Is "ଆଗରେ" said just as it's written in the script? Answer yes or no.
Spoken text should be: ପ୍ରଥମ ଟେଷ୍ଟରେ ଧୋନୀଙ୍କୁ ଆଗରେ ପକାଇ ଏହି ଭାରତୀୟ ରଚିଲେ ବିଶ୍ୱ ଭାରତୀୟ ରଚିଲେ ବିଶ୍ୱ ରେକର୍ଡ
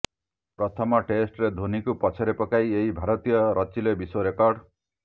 no